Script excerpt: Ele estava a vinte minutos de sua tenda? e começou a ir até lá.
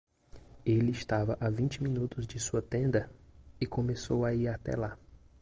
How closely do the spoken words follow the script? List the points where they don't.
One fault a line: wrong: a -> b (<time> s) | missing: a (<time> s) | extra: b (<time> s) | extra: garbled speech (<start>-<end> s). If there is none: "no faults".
no faults